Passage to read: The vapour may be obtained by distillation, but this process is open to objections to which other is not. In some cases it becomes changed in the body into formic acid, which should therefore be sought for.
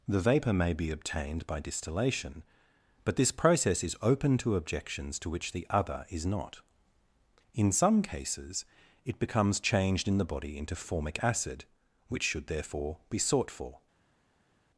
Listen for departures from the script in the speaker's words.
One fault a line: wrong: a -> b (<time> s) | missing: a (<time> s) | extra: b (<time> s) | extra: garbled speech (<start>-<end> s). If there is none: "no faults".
extra: the (5.5 s)